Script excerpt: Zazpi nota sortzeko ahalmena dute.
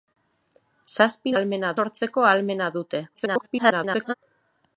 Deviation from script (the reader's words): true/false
true